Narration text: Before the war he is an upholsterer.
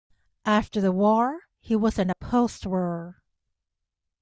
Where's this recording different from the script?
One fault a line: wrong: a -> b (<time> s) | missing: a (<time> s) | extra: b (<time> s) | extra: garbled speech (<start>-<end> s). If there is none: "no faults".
wrong: Before -> After (0.5 s)
wrong: is -> was (1.8 s)